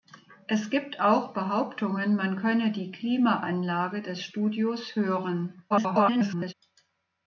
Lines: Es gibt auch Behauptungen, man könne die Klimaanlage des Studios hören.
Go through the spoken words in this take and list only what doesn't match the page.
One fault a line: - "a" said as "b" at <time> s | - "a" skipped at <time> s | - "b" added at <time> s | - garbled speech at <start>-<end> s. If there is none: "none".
- garbled speech at 5.7-6.5 s